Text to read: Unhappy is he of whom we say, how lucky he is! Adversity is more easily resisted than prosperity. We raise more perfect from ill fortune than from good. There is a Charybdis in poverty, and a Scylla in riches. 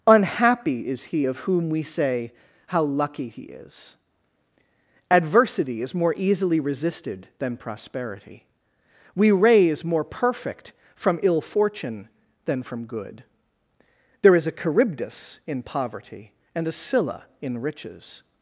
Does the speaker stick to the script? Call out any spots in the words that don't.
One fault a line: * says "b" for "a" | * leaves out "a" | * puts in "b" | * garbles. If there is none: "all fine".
all fine